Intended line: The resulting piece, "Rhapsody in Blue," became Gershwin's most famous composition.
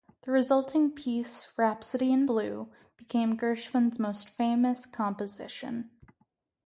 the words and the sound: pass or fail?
pass